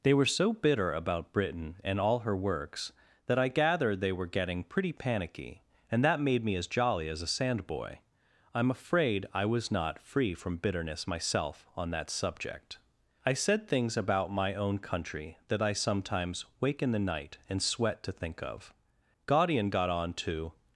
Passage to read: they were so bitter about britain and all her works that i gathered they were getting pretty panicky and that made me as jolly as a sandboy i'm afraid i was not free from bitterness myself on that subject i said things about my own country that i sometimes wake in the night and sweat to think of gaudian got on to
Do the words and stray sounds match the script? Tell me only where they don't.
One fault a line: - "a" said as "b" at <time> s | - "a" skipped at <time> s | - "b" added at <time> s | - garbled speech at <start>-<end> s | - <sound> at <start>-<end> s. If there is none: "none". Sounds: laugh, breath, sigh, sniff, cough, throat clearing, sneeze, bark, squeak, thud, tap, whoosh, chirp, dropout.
none